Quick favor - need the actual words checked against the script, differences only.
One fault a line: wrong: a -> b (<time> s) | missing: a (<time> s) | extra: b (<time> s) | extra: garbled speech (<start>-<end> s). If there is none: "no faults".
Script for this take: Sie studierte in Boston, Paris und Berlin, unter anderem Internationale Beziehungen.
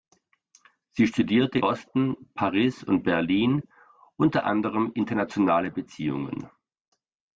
missing: in (1.6 s)